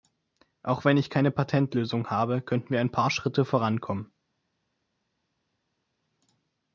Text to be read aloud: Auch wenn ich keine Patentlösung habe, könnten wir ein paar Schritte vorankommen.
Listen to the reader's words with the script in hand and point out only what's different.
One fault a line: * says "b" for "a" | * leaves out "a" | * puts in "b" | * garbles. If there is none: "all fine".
all fine